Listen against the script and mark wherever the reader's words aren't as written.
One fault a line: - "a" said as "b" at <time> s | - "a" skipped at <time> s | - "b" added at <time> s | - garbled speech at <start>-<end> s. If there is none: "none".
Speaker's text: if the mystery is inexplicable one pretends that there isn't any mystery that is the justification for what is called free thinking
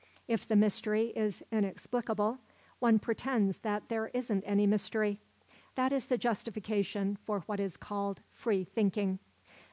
none